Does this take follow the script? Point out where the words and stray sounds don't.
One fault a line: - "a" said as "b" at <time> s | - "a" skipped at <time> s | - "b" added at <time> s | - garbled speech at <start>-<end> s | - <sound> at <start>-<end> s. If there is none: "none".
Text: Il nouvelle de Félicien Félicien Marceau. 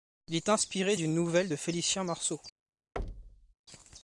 - "est inspiré d'une" added at 0.3 s
- "Félicien" skipped at 2.0 s
- thud at 3.0-3.5 s